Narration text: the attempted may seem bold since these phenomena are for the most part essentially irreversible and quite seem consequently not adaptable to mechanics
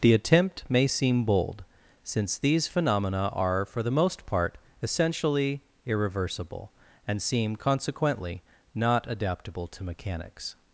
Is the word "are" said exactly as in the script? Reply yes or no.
yes